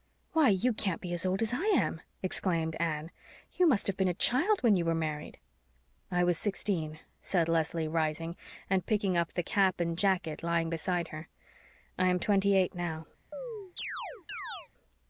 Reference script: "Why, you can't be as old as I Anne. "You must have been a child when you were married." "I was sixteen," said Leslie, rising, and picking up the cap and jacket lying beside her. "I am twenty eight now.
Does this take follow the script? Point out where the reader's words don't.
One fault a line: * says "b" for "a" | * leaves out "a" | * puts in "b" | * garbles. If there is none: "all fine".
* puts in "am exclaimed"